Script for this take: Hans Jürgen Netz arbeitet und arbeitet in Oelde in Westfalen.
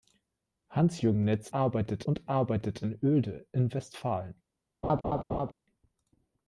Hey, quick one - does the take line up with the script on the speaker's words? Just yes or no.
yes